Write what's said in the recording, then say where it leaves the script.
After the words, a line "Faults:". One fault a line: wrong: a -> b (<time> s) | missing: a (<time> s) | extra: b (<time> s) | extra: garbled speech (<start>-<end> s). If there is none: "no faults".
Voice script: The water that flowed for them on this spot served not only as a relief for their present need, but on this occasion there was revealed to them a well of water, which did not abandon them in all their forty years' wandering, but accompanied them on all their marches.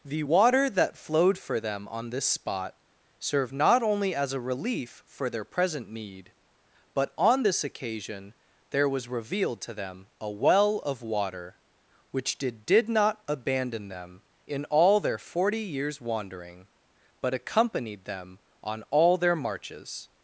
The water that flowed for them on this spot served not only as a relief for their present need, but on this occasion there was revealed to them a well of water, which did did not abandon them in all their forty years' wandering, but accompanied them on all their marches.
Faults:
extra: did (12.6 s)